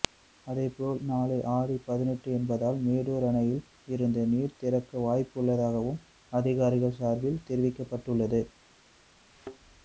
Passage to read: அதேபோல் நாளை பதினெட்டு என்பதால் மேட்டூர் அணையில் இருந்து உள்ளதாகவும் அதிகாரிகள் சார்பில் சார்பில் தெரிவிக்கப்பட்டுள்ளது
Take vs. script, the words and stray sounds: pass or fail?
fail